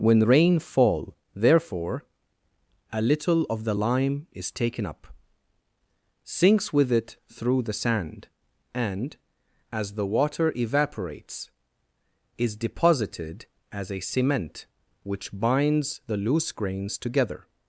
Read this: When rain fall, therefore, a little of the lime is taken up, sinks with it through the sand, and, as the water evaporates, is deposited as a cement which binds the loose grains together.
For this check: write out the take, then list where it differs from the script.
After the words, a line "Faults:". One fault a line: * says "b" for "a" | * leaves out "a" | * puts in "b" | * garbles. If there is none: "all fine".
When rain fall, therefore, a little of the lime is taken up, sinks with it through the sand, and, as the water evaporates, is deposited as a cement which binds the loose grains together.
Faults:
all fine